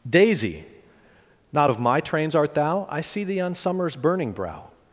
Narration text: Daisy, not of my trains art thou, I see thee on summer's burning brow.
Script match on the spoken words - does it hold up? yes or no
yes